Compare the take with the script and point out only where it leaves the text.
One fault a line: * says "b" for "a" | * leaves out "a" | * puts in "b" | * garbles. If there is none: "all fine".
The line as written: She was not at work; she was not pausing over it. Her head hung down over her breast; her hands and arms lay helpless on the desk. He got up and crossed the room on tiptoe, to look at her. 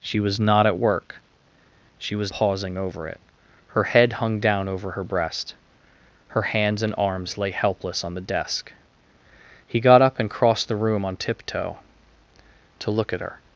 * leaves out "not"